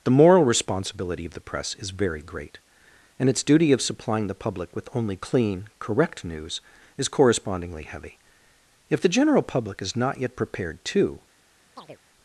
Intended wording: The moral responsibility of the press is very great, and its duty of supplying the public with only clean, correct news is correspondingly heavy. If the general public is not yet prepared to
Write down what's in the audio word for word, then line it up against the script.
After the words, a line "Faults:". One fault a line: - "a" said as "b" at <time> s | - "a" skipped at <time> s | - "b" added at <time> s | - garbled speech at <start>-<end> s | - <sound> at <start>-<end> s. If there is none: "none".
The moral responsibility of the press is very great, and its duty of supplying the public with only clean, correct news is correspondingly heavy. If the general public is not yet prepared to
Faults:
- chirp at 11.8-12.0 s